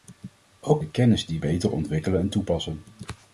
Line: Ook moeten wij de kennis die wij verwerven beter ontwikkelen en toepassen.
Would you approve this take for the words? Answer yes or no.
no